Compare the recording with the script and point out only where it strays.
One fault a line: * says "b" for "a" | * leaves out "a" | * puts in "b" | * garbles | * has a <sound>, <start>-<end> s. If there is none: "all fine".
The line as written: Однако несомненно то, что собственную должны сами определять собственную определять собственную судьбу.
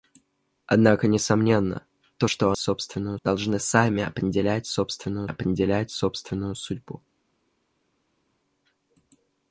all fine